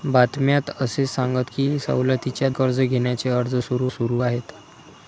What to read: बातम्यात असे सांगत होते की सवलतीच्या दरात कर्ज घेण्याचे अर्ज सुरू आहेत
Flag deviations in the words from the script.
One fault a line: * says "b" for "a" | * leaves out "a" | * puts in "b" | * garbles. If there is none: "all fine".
* leaves out "होते"
* leaves out "दरात"
* puts in "सुरू"